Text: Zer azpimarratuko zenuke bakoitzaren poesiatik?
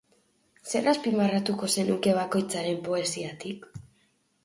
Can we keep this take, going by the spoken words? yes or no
yes